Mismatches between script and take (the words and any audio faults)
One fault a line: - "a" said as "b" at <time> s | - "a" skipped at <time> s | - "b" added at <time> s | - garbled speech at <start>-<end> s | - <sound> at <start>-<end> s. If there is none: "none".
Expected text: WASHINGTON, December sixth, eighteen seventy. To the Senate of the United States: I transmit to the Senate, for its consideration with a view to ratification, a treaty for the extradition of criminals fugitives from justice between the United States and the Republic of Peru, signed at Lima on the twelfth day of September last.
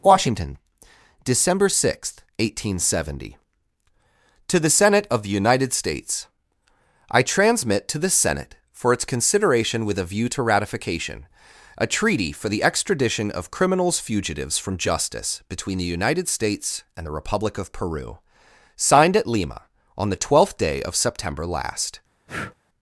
- breath at 22.3-22.6 s